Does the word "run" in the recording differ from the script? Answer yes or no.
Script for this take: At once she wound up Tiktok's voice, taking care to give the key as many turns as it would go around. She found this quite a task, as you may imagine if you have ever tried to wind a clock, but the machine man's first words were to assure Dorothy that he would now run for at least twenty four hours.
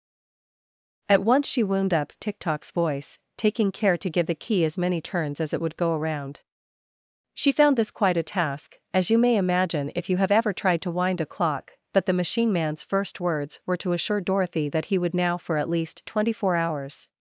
yes